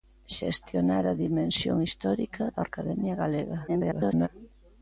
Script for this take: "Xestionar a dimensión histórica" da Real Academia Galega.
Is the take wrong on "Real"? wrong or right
wrong